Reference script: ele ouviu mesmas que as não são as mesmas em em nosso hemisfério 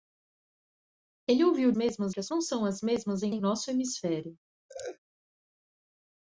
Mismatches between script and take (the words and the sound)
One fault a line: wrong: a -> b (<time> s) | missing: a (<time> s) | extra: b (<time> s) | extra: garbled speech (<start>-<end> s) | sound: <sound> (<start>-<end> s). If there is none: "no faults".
sound: laugh (4.7-5.0 s)